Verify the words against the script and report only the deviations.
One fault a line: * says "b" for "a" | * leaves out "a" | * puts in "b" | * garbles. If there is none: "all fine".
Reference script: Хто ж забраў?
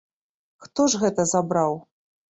* puts in "гэта"